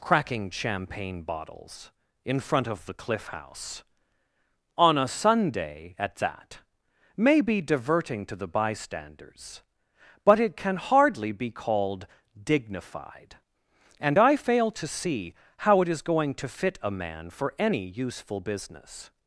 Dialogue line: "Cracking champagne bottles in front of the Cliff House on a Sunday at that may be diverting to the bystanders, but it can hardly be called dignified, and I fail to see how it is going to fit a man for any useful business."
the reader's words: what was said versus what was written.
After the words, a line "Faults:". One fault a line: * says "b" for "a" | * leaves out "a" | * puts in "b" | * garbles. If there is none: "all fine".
"Cracking champagne bottles in front of the Cliff House on a Sunday at that may be diverting to the bystanders, but it can hardly be called dignified, and I fail to see how it is going to fit a man for any useful business."
Faults:
all fine